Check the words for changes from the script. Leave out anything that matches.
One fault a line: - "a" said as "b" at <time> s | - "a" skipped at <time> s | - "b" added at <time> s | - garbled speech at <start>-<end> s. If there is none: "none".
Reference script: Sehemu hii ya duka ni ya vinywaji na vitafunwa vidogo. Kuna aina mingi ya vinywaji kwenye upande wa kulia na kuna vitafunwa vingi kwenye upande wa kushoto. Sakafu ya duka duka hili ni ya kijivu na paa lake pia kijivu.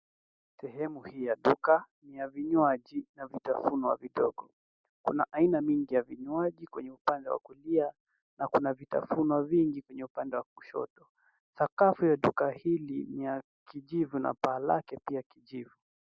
- "duka" skipped at 12.5 s